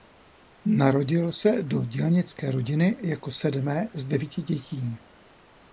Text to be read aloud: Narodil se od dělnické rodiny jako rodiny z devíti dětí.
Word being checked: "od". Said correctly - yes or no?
no